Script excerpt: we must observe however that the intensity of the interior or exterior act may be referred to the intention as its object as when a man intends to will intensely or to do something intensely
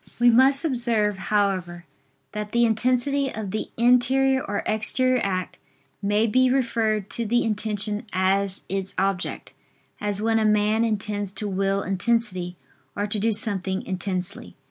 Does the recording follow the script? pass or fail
pass